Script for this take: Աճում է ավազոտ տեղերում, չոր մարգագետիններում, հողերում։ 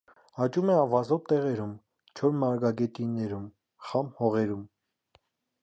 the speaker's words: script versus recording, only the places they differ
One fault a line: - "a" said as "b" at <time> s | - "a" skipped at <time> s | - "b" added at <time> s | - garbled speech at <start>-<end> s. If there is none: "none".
- "խամ" added at 3.9 s